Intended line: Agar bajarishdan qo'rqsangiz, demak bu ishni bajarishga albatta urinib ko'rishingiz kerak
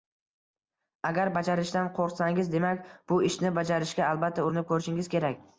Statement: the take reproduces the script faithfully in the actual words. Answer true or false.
true